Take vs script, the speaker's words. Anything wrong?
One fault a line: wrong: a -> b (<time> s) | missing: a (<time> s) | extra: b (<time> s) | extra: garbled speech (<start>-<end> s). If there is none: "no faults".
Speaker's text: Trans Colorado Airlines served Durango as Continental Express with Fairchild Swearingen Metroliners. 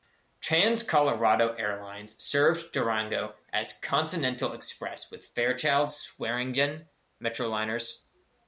no faults